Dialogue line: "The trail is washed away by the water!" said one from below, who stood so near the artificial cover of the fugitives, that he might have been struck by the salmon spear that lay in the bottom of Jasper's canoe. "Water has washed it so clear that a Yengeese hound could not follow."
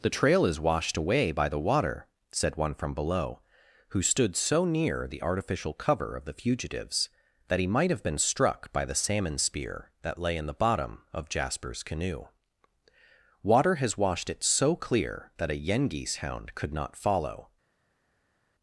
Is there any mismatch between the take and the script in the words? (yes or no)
no